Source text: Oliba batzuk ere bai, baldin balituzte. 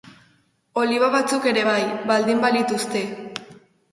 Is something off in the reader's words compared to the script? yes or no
no